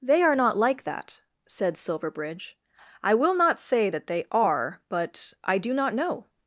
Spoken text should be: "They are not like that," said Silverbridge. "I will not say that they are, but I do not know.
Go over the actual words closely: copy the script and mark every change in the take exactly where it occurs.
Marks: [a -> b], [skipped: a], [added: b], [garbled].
"They are not like that," said Silverbridge. "I will not say that they are, but I do not know.